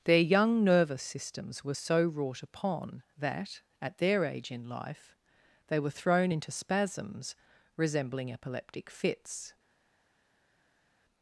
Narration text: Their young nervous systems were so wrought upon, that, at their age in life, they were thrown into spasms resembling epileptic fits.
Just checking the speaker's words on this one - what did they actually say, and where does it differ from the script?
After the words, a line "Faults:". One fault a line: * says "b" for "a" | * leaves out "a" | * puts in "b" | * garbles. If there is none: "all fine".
Their young nervous systems were so wrought upon, that, at their age in life, they were thrown into spasms resembling epileptic fits.
Faults:
all fine